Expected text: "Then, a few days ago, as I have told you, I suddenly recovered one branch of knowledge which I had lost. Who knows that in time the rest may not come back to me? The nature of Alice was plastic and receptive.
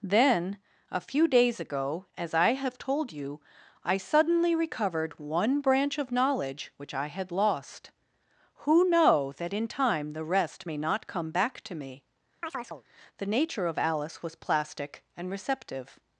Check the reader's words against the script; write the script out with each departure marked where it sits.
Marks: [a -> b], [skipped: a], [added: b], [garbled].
"Then, a few days ago, as I have told you, I suddenly recovered one branch of knowledge which I had lost. Who [knows -> know] that in time the rest may not come back to me? The nature of Alice was plastic and receptive.